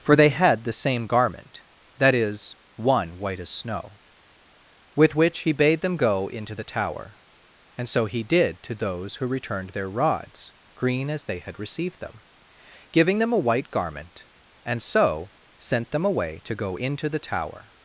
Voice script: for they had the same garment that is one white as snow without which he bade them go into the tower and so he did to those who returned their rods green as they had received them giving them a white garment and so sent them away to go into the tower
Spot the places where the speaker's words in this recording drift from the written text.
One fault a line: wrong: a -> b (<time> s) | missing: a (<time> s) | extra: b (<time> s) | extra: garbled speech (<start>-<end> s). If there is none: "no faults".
wrong: without -> with (5.0 s)